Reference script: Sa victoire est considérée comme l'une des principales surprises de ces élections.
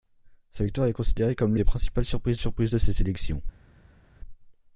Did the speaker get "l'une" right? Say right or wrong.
wrong